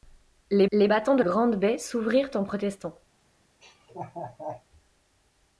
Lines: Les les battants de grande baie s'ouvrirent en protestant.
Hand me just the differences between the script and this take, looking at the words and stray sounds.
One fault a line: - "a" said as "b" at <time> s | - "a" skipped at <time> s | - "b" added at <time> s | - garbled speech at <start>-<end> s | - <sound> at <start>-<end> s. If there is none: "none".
- laugh at 3.6-4.6 s